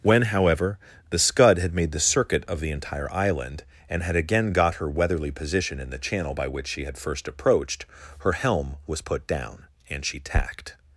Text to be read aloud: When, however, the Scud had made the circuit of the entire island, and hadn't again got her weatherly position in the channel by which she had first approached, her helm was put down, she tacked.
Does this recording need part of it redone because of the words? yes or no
yes